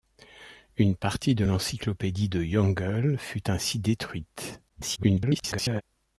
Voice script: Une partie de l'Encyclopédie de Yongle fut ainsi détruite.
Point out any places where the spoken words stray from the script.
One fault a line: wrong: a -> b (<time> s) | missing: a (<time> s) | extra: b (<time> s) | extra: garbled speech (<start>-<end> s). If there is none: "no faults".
extra: garbled speech (4.7-5.8 s)